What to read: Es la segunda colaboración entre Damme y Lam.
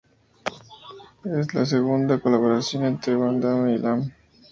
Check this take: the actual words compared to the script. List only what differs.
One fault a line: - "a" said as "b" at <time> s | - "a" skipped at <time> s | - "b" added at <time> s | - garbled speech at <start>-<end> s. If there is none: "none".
- "Van" added at 3.1 s